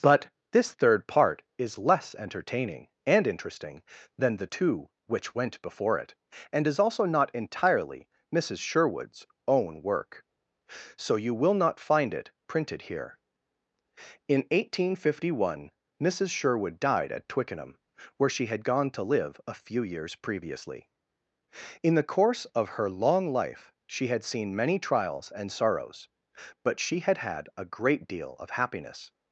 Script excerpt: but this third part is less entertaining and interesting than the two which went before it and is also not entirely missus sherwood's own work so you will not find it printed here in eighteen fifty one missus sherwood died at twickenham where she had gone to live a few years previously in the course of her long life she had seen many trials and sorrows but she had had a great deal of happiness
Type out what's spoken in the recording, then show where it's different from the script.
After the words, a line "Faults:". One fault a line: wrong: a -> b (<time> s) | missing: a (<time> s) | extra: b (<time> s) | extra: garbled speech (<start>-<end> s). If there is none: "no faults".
but this third part is less entertaining and interesting than the two which went before it and is also not entirely missus sherwood's own work so you will not find it printed here in eighteen fifty one missus sherwood died at twickenham where she had gone to live a few years previously in the course of her long life she had seen many trials and sorrows but she had had a great deal of happiness
Faults:
no faults